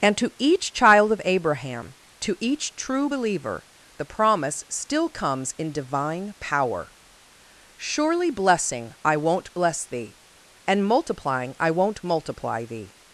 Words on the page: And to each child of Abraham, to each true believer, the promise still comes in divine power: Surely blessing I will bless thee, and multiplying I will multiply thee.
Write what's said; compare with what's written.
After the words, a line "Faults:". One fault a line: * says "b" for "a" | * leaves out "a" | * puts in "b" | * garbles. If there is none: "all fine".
And to each child of Abraham, to each true believer, the promise still comes in divine power: Surely blessing I won't bless thee, and multiplying I won't multiply thee.
Faults:
* says "won't" for "will"
* says "won't" for "will"